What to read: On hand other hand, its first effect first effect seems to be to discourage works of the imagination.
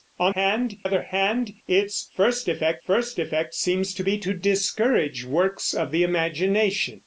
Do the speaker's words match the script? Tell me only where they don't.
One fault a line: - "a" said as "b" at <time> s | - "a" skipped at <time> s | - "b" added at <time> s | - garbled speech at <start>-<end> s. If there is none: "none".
none